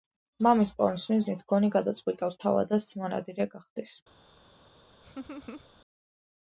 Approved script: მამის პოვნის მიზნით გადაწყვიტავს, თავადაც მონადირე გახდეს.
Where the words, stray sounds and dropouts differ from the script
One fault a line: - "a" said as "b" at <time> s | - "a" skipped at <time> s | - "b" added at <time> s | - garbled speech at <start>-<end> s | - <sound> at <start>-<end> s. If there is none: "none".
- "გონი" added at 1.5 s
- laugh at 5.0-5.7 s